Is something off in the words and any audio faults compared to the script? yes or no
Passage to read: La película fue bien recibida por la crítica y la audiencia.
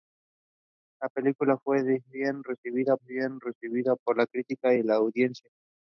yes